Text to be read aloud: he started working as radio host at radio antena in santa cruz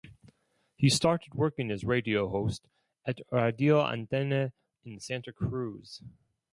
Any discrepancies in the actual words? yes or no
no